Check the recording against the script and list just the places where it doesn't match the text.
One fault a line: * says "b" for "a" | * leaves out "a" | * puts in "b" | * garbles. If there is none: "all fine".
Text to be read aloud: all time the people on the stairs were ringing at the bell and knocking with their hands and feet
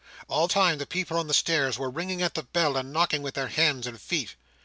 all fine